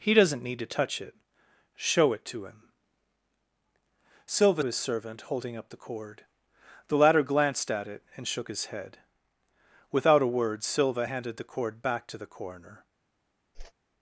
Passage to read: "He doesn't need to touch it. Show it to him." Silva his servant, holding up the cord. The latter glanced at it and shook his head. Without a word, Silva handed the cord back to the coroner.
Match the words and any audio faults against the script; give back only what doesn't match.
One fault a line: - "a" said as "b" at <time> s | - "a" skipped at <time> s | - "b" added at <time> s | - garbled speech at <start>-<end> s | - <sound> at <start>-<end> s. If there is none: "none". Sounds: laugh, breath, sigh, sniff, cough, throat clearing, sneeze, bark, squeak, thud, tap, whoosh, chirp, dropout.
- whoosh at 13.5-13.7 s